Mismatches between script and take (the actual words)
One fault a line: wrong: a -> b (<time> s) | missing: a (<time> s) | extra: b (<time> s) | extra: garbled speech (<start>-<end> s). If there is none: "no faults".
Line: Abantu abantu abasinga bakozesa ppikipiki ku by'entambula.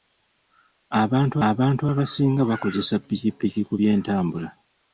no faults